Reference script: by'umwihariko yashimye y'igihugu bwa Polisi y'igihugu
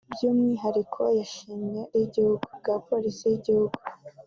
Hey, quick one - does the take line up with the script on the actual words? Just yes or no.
yes